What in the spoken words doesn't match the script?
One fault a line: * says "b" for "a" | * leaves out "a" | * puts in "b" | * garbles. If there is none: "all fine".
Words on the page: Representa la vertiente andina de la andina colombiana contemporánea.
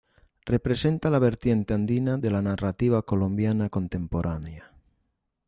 * says "narrativa" for "andina"